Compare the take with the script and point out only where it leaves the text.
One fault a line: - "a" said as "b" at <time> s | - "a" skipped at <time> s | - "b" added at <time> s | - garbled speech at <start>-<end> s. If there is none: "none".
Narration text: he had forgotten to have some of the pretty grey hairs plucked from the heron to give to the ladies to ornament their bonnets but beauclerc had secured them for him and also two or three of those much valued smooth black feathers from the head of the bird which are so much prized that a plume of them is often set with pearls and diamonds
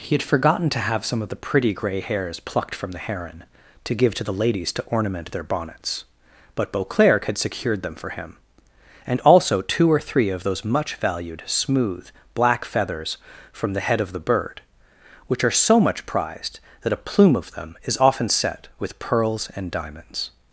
none